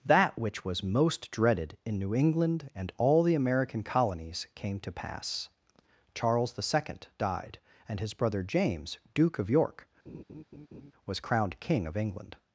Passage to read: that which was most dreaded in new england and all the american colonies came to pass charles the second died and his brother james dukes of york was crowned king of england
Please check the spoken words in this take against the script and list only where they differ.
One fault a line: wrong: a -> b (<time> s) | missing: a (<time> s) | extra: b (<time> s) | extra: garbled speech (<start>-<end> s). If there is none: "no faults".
wrong: dukes -> duke (9.1 s)